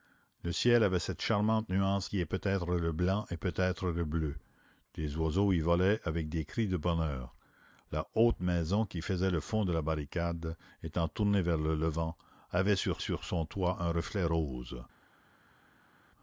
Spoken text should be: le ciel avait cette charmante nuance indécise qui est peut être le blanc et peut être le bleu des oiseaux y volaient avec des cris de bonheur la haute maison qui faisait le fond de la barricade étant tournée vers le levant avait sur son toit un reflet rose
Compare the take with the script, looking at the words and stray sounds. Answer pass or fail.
fail